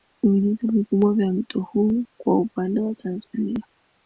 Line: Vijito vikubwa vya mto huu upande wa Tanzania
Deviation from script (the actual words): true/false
true